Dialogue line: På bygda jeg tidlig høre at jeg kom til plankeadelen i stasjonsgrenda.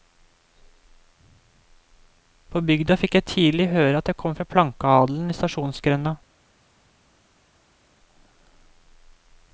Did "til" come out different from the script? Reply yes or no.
yes